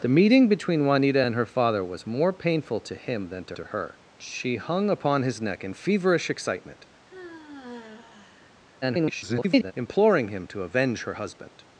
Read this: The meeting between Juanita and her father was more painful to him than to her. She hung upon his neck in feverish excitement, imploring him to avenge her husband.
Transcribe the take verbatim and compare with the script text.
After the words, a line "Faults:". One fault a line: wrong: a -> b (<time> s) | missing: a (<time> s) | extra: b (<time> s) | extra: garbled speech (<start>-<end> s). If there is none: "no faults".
The meeting between Juanita and her father was more painful to him than to to her. She hung upon his neck in feverish excitement, [garbled] imploring him to avenge her husband.
Faults:
extra: to (3.5 s)
extra: garbled speech (8.8-9.7 s)